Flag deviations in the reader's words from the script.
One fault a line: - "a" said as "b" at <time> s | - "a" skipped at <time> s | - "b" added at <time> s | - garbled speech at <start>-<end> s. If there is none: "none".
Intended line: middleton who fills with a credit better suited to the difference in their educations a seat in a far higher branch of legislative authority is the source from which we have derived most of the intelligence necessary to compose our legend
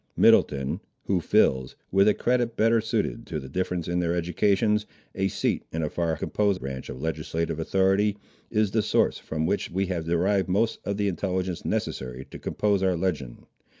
- "higher" said as "compose" at 6.1 s